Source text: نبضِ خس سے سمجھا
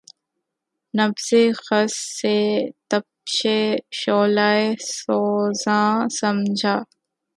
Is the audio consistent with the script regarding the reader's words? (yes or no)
no